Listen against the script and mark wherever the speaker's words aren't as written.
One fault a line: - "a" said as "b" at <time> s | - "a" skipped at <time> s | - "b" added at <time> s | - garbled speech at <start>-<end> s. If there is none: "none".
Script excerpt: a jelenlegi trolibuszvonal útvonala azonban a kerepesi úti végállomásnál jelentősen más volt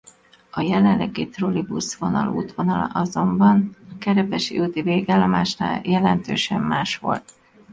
none